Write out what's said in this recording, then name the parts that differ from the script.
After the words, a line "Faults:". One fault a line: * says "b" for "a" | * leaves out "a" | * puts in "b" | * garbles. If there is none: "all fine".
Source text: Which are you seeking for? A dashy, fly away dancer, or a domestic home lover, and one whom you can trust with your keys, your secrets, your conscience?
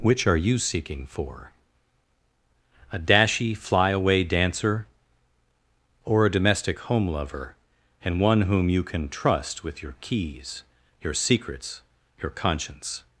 Which are you seeking for? A dashy, fly away dancer, or a domestic home lover, and one whom you can trust with your keys, your secrets, your conscience?
Faults:
all fine